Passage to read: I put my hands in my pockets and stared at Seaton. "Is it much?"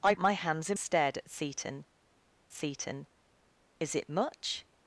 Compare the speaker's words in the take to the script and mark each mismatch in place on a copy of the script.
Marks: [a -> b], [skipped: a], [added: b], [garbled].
I [skipped: put] my hands in [skipped: my pockets and] stared at Seaton. [added: Seaton] "Is it much?"